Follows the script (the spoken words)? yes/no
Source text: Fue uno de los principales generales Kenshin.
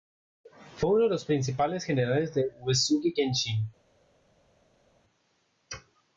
no